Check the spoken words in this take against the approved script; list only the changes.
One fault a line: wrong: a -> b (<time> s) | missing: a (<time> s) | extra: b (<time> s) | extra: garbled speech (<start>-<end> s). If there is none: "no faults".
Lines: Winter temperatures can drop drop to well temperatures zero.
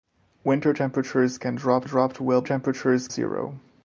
no faults